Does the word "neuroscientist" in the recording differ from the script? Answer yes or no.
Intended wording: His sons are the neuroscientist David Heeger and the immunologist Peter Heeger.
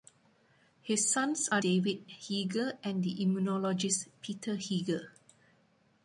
yes